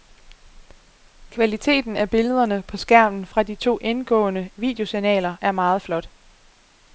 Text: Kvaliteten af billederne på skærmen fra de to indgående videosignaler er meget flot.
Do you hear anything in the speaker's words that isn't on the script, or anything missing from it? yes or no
no